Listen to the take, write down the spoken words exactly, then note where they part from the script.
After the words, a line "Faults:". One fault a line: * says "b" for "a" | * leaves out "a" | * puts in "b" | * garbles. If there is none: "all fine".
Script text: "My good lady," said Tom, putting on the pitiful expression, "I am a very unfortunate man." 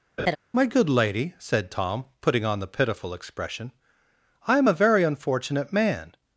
"My good lady," said Tom, putting on the pitiful expression, "I am a very unfortunate man."
Faults:
all fine